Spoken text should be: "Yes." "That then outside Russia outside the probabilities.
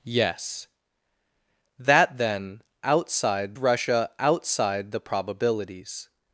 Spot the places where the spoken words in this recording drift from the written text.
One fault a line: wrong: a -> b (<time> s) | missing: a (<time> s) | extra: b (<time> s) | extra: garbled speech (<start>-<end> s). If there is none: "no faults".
no faults